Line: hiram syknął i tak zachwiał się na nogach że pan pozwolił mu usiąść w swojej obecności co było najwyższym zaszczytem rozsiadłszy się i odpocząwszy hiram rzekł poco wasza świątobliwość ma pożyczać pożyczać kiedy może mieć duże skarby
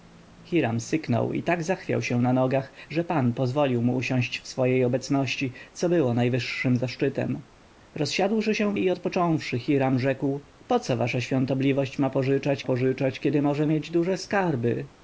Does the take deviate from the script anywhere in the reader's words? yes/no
no